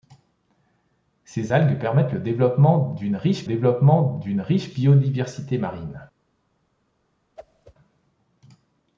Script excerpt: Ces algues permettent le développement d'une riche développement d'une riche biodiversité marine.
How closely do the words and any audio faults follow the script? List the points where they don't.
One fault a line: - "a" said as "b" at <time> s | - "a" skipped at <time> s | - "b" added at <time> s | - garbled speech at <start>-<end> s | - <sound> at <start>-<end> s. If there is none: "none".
- whoosh at 7.4-7.7 s